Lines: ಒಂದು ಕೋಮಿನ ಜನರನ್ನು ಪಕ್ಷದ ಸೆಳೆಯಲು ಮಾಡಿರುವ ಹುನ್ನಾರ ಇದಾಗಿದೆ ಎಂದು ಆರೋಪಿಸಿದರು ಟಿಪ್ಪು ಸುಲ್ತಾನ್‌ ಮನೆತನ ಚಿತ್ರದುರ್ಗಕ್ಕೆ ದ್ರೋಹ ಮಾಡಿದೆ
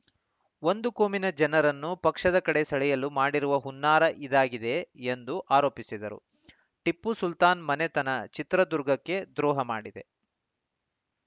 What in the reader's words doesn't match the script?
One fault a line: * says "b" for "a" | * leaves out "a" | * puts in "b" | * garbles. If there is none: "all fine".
* puts in "ಕಡೆ"